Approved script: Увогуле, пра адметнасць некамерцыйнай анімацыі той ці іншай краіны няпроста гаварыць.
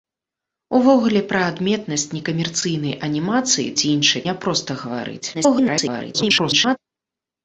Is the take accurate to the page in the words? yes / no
no